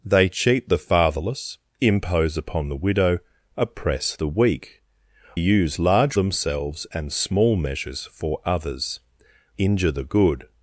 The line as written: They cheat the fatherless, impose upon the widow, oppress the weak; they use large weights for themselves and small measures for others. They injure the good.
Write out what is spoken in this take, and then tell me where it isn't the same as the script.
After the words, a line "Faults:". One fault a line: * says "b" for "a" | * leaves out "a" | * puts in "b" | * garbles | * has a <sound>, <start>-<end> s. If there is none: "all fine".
They cheat the fatherless, impose upon the widow, oppress the weak; use large themselves and small measures for others. Injure the good.
Faults:
* leaves out "they"
* leaves out "weights for"
* leaves out "They"